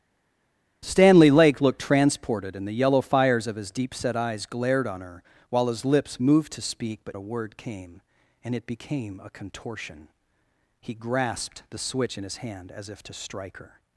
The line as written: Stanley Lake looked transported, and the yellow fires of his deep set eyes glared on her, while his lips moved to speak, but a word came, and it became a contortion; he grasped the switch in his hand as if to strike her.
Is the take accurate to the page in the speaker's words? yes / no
yes